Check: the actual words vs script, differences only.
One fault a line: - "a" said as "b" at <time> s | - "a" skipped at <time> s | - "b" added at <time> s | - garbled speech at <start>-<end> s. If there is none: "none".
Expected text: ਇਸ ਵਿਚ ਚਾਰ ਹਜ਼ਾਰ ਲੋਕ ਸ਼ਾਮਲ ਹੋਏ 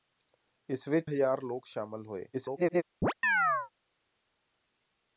- "ਚਾਰ" skipped at 1.1 s
- garbled speech at 2.3-2.8 s